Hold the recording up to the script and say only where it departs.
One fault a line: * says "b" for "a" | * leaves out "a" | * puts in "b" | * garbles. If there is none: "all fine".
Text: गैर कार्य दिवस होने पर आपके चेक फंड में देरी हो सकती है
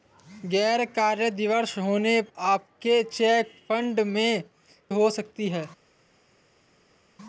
* leaves out "पर"
* leaves out "देरी"